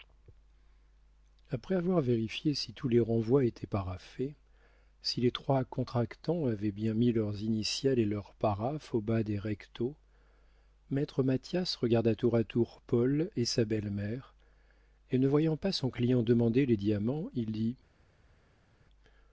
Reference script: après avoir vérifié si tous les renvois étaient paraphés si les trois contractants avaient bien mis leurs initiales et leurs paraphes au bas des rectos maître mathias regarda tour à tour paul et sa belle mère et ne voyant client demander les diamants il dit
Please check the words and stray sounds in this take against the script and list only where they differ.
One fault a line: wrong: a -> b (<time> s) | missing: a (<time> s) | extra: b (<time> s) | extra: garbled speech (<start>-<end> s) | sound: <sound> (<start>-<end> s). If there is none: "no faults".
extra: pas son (15.6 s)